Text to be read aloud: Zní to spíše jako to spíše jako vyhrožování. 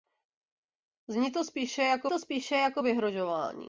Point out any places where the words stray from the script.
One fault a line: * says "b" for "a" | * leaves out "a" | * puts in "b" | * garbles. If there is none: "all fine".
all fine